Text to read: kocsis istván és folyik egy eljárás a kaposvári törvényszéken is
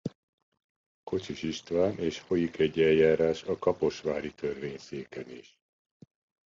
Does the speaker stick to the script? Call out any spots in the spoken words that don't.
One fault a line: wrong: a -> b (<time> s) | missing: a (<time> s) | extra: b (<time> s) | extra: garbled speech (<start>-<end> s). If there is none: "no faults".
no faults